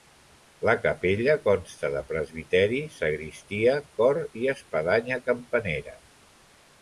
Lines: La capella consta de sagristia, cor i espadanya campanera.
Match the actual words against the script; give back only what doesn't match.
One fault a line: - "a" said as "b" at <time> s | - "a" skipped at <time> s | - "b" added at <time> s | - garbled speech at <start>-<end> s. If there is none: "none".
- "presbiteri" added at 2.1 s